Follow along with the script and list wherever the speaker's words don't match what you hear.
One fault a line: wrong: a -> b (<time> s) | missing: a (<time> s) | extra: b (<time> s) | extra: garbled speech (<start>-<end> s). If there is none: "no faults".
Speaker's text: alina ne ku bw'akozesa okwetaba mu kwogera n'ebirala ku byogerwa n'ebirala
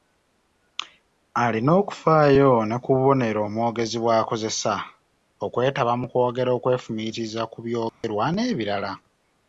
extra: okufaayo (1.8 s)
extra: bubonero omwogezi (2.9 s)
wrong: n'ebirala -> okwefumiitiriza (6.6 s)